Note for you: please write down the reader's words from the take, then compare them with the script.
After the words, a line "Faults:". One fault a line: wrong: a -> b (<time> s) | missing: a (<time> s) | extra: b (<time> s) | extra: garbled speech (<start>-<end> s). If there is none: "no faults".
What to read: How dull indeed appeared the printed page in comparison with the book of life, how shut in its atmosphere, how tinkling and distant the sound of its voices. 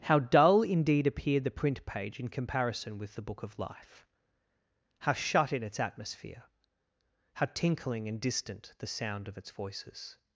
How dull indeed appeared the print page in comparison with the book of life, how shut in its atmosphere, how tinkling and distant the sound of its voices.
Faults:
wrong: printed -> print (1.5 s)